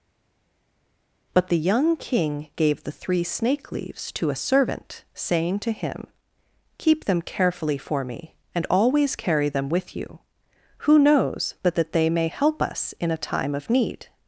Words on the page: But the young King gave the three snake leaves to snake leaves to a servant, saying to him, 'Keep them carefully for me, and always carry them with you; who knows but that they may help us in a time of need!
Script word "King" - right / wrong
right